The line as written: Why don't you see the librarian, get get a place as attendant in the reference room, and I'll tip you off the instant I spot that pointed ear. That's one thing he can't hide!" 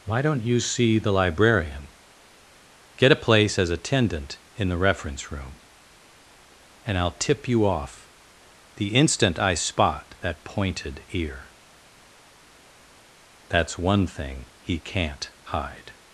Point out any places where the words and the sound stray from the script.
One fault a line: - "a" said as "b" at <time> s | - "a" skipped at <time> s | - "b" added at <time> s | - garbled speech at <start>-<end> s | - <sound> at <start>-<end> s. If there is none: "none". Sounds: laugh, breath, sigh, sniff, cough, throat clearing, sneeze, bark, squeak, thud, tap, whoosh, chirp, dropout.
- "get" skipped at 3.1 s